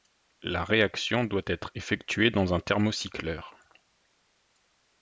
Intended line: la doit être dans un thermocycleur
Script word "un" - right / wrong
right